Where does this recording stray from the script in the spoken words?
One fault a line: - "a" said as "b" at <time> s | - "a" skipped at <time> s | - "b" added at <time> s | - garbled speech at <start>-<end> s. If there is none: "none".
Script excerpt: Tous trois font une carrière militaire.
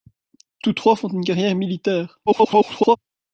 - garbled speech at 2.3-3.0 s